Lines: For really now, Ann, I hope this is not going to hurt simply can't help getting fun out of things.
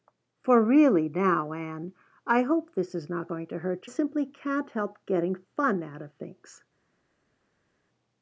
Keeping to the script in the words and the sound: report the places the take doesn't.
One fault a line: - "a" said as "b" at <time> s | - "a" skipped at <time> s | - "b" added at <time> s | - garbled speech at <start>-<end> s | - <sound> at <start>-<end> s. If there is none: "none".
none